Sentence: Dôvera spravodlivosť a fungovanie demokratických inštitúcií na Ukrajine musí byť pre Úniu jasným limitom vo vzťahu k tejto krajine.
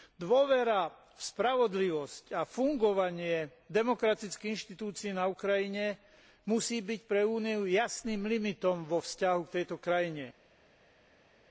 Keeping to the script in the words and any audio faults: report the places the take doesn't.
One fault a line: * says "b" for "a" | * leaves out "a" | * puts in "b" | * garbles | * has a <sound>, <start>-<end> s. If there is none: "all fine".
* puts in "v"